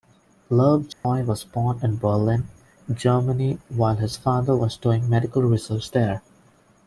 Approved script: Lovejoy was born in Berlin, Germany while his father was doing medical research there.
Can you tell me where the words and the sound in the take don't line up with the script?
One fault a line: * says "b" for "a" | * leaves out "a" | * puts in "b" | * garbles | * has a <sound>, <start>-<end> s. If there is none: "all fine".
* has a dropout, 0.9-1.0 s